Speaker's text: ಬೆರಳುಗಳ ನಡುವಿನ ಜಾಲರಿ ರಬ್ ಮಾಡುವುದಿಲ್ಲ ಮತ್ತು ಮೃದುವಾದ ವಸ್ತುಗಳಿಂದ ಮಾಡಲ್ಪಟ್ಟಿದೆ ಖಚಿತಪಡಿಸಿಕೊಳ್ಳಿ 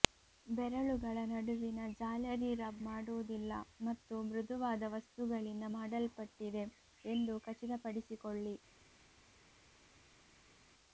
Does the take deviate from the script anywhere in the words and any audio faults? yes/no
yes